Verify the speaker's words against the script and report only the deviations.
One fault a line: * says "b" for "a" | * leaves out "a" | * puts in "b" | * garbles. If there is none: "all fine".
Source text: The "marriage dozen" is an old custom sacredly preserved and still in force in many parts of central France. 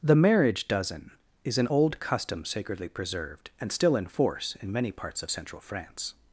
all fine